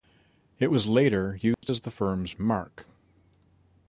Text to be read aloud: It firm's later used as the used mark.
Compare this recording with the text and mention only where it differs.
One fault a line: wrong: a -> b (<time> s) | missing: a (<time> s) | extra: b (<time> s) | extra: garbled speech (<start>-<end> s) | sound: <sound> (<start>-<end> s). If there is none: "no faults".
wrong: firm's -> was (0.7 s)
sound: dropout (1.5-1.6 s)
wrong: used -> firm's (1.9 s)